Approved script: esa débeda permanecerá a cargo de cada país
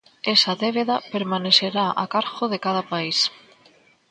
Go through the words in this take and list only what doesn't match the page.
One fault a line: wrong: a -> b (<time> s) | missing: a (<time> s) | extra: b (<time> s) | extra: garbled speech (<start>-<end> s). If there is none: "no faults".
no faults